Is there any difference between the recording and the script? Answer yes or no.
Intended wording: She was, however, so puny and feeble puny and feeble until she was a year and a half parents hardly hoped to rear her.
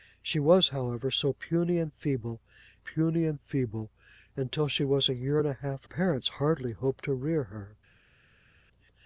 no